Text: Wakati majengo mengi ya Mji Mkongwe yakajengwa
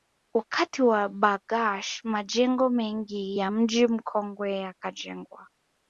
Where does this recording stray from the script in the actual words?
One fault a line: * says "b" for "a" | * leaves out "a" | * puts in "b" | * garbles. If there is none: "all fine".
* puts in "wa Bargash"